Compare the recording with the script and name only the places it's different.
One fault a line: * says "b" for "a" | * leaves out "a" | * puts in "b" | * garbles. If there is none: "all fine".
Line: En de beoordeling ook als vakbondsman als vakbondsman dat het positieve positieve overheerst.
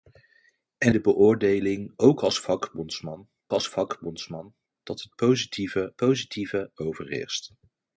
all fine